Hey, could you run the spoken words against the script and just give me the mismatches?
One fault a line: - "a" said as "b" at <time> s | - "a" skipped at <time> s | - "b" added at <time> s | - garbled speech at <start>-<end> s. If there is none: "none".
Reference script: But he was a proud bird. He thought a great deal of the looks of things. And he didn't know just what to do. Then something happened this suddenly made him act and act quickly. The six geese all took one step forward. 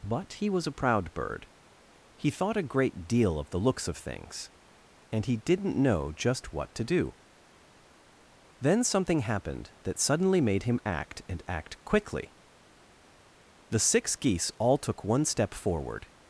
- "this" said as "that" at 9.8 s